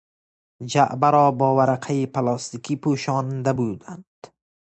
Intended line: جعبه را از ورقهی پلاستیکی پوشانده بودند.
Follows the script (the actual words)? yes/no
no